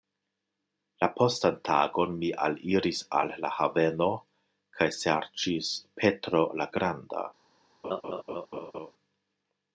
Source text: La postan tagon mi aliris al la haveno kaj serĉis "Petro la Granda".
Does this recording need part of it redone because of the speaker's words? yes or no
no